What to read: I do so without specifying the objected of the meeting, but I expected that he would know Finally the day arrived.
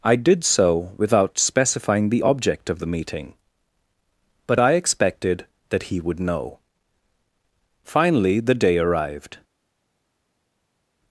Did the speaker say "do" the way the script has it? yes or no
no